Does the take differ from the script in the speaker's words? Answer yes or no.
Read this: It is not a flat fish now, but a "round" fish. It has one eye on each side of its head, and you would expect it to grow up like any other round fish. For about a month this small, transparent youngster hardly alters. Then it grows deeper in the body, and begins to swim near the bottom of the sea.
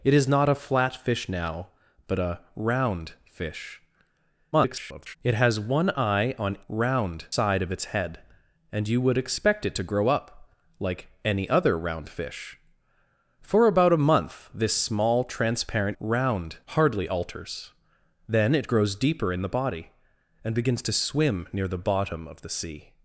yes